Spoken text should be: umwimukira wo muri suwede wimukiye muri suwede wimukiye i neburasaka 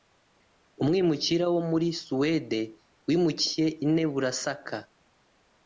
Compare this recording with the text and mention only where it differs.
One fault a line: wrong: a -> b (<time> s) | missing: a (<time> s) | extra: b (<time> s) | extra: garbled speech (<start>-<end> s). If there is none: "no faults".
missing: muri suwede wimukiye (3.7 s)